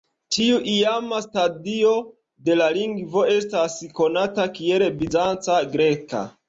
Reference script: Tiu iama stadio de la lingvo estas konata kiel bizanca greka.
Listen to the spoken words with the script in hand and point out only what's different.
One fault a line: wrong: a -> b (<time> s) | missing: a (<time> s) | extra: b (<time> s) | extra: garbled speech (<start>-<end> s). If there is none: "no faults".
no faults